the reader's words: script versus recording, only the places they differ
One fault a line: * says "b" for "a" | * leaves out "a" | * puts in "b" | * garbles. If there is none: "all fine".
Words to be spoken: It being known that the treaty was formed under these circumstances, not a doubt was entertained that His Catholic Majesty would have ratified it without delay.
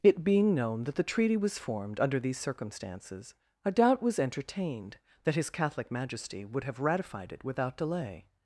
* leaves out "not"